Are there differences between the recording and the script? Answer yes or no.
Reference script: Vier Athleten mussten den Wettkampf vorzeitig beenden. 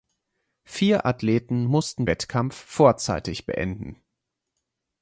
yes